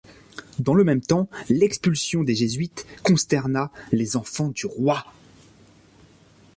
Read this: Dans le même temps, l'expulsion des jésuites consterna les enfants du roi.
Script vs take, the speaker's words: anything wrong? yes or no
no